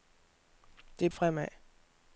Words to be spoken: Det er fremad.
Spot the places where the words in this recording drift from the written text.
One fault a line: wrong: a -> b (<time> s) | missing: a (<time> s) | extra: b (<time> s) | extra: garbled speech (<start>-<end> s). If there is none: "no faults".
no faults